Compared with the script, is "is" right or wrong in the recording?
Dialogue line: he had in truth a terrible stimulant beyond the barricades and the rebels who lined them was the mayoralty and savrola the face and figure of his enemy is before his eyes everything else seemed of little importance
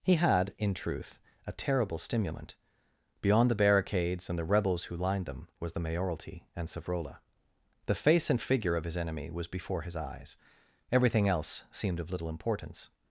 wrong